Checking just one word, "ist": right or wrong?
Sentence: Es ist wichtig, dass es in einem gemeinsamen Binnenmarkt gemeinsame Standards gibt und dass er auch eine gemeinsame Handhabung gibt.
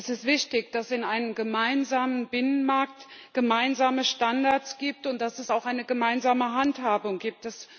right